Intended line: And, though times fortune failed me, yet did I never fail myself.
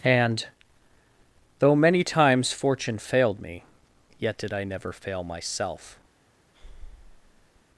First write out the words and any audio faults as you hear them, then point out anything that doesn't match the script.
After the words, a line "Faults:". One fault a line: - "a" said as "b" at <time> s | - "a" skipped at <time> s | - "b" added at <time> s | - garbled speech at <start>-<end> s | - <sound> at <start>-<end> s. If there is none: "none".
And, though many times fortune failed me, yet did I never fail myself.
Faults:
- "many" added at 1.8 s
- breath at 6.5-7.6 s